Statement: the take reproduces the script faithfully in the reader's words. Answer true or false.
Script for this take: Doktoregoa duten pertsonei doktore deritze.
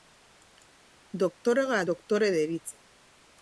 false